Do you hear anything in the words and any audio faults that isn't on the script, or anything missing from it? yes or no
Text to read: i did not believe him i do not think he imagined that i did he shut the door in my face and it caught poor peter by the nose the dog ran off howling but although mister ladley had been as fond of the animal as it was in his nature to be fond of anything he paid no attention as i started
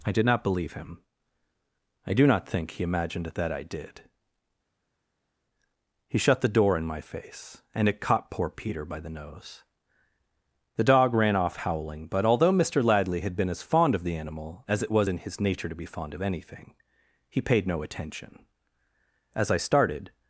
no